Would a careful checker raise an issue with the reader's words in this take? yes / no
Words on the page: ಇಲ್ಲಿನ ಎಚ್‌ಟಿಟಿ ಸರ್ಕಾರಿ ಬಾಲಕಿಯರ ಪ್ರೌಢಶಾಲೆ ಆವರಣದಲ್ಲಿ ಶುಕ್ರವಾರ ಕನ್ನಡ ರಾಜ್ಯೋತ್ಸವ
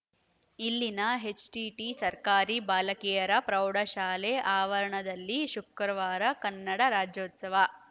no